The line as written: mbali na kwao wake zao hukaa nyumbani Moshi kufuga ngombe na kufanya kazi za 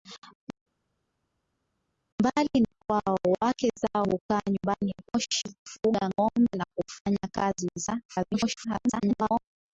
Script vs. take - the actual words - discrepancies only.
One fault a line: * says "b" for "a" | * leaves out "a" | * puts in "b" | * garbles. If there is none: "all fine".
* garbles